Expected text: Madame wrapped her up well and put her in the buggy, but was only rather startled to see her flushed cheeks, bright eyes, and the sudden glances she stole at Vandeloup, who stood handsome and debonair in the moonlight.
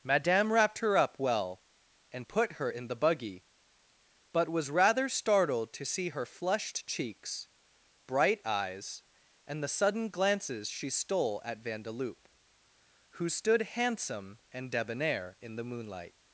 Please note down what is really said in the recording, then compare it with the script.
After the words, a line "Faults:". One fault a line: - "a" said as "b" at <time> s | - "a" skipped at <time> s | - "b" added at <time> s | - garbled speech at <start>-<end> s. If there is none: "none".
Madame wrapped her up well and put her in the buggy, but was rather startled to see her flushed cheeks, bright eyes, and the sudden glances she stole at Vandeloup, who stood handsome and debonair in the moonlight.
Faults:
- "only" skipped at 4.7 s